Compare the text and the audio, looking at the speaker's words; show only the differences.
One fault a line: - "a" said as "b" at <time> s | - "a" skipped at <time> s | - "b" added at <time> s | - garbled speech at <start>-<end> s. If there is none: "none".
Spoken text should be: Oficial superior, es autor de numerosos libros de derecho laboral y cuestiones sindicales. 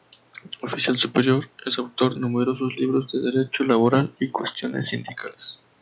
- "de" skipped at 2.1 s